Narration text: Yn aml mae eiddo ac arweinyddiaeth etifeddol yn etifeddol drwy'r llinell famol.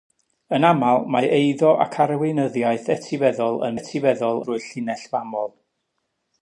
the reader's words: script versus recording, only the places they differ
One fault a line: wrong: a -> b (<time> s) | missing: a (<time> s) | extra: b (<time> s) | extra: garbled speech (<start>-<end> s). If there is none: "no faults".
no faults